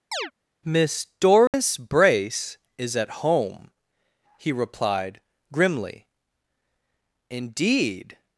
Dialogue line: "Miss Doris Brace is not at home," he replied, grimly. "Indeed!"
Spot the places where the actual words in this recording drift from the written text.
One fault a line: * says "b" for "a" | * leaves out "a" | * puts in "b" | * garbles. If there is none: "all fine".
* leaves out "not"